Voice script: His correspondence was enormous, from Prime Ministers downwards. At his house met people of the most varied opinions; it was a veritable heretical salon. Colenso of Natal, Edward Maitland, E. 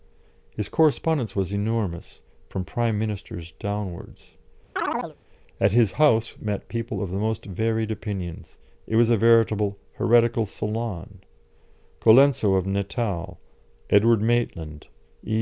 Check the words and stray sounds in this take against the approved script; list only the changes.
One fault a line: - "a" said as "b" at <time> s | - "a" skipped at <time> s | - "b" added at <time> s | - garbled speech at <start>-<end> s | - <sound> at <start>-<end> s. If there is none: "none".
- chirp at 4.8-5.2 s